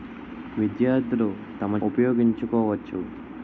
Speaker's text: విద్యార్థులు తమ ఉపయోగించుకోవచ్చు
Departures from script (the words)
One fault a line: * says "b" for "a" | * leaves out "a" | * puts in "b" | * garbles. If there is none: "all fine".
all fine